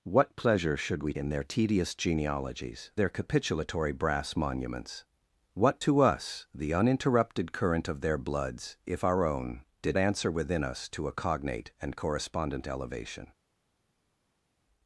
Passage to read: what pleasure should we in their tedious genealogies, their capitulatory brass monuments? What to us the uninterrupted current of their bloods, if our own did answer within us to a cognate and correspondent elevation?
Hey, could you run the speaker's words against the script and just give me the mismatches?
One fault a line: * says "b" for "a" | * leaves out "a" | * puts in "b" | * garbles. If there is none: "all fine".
all fine